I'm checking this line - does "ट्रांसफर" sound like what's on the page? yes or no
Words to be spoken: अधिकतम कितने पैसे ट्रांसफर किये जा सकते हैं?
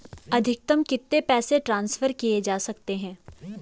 yes